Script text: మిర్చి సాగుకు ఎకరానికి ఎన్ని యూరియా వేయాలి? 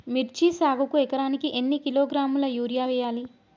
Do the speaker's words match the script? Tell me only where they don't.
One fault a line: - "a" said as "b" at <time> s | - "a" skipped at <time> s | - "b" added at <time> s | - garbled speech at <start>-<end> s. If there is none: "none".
- "కిలోగ్రాముల" added at 1.8 s